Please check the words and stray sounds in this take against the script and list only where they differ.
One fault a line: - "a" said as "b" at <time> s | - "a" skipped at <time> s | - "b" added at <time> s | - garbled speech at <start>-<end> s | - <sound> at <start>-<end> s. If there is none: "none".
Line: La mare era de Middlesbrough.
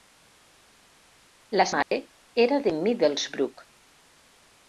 - dropout at 1.8-1.9 s